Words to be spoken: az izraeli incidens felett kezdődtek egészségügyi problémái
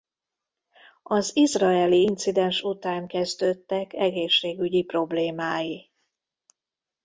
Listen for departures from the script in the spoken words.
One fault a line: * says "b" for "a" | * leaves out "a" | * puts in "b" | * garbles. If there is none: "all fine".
* says "után" for "felett"